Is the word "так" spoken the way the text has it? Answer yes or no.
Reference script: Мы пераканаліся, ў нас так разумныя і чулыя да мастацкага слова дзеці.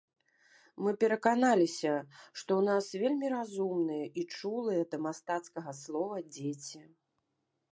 no